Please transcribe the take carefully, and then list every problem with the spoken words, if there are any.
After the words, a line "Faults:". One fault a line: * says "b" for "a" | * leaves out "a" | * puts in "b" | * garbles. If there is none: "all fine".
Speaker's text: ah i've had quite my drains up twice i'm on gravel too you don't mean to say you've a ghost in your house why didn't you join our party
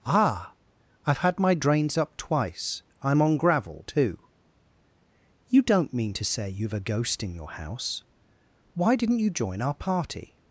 ah i've had my drains up twice i'm on gravel too you don't mean to say you've a ghost in your house why didn't you join our party
Faults:
* leaves out "quite"